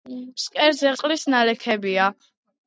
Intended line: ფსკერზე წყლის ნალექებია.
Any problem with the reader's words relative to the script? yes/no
no